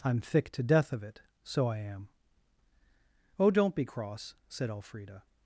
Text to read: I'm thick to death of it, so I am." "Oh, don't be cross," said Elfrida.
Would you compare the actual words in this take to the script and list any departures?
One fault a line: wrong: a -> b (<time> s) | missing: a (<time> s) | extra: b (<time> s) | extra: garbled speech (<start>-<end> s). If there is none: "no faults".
no faults